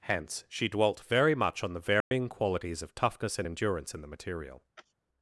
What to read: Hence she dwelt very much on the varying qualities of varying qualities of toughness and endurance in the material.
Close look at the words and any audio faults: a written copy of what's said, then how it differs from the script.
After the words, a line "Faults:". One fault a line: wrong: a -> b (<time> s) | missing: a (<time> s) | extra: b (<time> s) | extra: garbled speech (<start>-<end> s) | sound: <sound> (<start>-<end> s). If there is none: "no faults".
Hence she dwelt very much on the varying qualities of toughness and endurance in the material.
Faults:
sound: dropout (2.0-2.1 s)
missing: varying qualities of (3.0 s)
sound: sneeze (4.8-4.9 s)